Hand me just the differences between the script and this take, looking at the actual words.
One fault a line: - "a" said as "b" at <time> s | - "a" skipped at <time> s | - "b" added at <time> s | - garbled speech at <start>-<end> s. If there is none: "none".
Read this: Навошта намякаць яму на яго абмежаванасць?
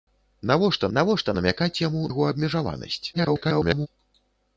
- "навошта" added at 1.0 s
- "на" skipped at 2.0 s
- garbled speech at 3.1-3.9 s